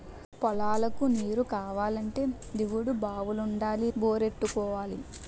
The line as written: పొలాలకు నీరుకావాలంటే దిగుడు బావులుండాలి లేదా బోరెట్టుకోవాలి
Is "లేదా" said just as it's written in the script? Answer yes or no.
no